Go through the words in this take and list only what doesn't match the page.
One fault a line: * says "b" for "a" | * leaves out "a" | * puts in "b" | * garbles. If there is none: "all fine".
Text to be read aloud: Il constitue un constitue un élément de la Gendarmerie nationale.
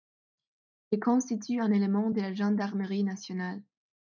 * leaves out "constitue un"